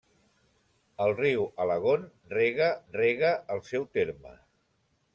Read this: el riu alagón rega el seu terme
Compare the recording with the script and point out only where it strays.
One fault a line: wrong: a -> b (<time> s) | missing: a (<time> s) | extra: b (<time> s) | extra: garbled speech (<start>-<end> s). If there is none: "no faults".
extra: rega (2.9 s)